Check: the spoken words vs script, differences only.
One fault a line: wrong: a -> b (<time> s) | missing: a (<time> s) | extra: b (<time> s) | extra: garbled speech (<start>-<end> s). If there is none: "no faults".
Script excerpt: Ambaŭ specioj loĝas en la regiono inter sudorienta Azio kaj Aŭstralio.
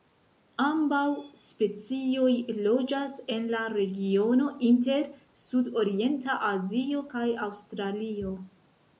no faults